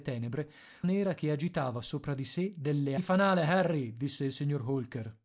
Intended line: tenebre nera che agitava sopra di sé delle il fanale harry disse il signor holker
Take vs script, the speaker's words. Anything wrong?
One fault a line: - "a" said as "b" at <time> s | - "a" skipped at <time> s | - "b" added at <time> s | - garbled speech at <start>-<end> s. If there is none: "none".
none